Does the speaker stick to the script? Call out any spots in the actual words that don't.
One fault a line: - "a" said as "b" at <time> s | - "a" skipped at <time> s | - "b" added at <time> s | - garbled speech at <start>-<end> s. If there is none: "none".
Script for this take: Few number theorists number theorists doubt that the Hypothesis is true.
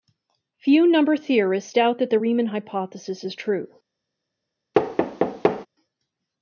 - "number theorists" skipped at 1.8 s
- "Riemann" added at 2.2 s